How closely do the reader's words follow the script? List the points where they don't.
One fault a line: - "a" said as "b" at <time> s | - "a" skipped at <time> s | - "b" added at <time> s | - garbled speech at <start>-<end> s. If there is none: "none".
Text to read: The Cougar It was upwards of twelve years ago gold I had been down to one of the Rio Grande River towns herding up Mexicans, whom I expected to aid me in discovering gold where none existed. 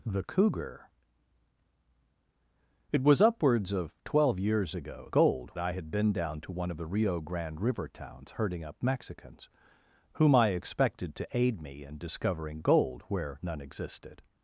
none